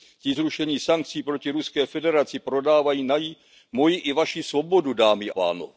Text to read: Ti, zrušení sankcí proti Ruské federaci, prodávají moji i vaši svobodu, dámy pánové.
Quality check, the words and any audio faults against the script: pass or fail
pass